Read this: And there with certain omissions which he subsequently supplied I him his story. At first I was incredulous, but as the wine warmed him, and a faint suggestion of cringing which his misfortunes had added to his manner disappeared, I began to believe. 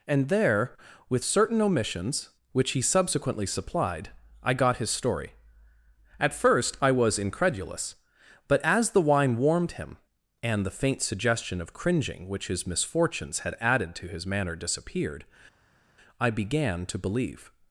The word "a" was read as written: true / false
false